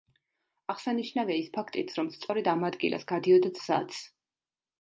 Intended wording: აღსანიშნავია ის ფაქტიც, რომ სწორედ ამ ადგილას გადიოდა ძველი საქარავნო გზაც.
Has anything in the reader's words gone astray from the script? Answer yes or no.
yes